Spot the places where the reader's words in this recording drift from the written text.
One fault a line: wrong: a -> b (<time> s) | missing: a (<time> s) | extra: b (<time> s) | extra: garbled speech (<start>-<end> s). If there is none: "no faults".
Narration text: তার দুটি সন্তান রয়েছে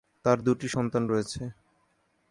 no faults